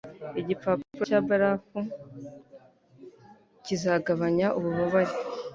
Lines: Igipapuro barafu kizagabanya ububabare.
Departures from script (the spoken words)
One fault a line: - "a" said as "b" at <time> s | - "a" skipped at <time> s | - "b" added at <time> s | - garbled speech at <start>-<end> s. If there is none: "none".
- "cya" added at 1.1 s